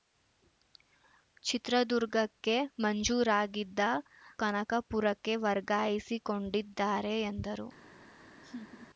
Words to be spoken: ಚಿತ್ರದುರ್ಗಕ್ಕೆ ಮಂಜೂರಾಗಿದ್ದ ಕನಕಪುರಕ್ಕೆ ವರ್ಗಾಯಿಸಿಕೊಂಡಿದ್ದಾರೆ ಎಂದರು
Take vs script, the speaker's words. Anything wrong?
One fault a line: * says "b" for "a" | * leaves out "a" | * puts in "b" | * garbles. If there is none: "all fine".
all fine